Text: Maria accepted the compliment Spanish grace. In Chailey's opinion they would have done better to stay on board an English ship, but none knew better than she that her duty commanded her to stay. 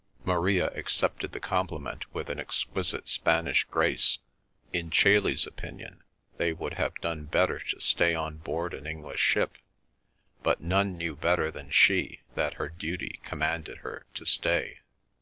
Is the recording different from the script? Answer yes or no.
yes